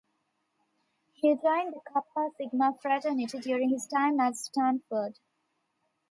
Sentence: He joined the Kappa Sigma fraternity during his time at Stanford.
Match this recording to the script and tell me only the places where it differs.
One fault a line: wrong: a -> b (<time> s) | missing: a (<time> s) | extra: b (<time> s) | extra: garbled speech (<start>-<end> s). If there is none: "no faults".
no faults